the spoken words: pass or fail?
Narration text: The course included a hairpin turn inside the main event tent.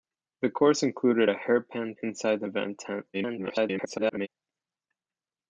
fail